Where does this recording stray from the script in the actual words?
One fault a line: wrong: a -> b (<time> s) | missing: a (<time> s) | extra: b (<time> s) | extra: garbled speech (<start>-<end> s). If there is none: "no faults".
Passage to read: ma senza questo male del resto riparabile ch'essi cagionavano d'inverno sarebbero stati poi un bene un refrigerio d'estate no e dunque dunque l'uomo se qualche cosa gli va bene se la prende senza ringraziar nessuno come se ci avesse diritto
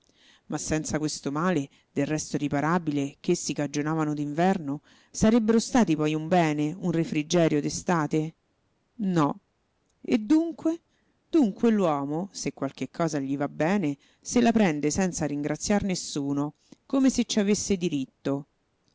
no faults